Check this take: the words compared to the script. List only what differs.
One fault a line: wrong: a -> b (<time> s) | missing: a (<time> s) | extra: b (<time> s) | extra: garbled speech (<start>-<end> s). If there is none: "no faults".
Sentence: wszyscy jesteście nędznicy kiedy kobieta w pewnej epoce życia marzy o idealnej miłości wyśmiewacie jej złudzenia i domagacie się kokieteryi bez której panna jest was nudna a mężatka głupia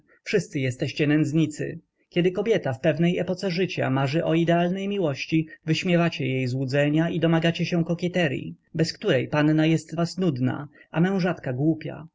no faults